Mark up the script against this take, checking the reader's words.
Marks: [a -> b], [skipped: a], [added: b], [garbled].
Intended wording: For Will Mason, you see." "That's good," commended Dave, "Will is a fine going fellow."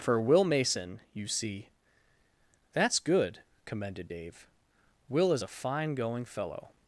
For Will Mason, you see." "That's good," commended Dave, "Will is a fine going fellow."